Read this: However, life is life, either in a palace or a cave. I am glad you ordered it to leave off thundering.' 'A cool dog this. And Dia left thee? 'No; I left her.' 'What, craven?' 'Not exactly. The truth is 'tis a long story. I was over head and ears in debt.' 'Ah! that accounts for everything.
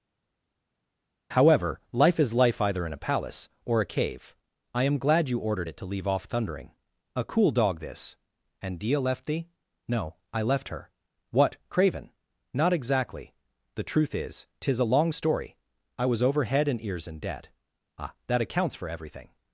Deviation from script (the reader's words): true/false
false